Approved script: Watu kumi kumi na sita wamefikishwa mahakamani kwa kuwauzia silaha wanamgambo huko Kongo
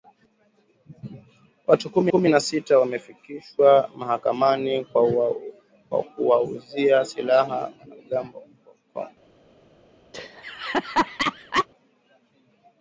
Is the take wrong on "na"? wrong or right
right